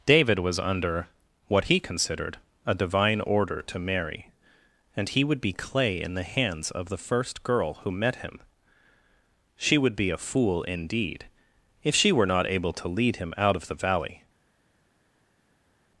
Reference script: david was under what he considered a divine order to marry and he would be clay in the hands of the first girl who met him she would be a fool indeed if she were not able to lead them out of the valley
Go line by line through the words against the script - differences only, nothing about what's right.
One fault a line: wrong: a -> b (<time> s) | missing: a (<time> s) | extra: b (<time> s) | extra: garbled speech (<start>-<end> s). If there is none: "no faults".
wrong: them -> him (13.2 s)